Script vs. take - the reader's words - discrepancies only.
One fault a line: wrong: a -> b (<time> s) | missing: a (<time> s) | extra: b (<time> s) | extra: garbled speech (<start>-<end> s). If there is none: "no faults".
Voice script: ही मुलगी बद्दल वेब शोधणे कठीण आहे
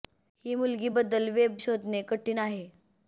no faults